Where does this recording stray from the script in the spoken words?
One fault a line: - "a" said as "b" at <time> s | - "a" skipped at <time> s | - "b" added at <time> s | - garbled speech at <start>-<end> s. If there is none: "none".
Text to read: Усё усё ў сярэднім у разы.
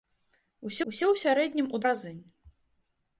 none